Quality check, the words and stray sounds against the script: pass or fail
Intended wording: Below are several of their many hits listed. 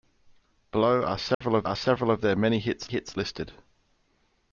fail